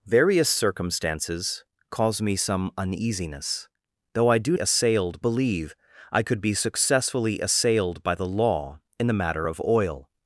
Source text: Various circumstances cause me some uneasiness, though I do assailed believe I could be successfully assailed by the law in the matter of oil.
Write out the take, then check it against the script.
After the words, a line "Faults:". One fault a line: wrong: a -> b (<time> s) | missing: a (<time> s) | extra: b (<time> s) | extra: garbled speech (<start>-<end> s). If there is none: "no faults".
Various circumstances cause me some uneasiness, though I do assailed believe I could be successfully assailed by the law in the matter of oil.
Faults:
no faults